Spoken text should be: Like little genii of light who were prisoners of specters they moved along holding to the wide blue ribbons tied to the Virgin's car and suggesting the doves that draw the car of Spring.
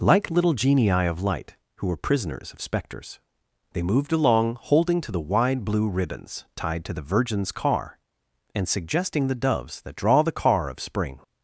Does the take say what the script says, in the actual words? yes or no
yes